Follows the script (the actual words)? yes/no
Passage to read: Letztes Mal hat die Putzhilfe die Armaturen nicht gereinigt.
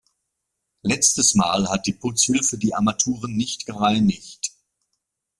yes